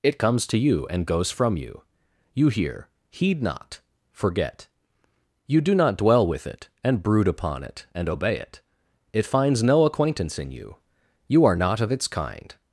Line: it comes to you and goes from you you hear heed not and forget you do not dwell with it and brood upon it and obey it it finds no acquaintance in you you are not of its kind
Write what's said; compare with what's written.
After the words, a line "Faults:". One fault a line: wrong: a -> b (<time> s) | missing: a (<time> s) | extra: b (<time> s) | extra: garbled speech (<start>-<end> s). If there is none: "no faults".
it comes to you and goes from you you hear heed not forget you do not dwell with it and brood upon it and obey it it finds no acquaintance in you you are not of its kind
Faults:
missing: and (3.8 s)